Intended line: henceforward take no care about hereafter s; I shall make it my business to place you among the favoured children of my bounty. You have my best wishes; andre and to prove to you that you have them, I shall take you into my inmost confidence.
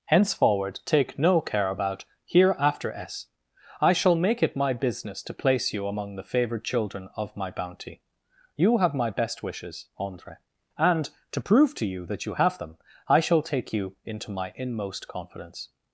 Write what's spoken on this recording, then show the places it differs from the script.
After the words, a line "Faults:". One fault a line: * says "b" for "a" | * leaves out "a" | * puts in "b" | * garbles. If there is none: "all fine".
henceforward take no care about hereafter s; I shall make it my business to place you among the favoured children of my bounty. You have my best wishes; andre and to prove to you that you have them, I shall take you into my inmost confidence.
Faults:
all fine